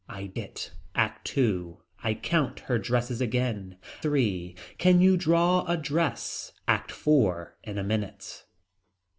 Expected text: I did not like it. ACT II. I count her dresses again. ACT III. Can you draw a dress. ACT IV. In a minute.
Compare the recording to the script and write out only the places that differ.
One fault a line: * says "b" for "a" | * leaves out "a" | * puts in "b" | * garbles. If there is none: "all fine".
* leaves out "did not like"
* leaves out "ACT"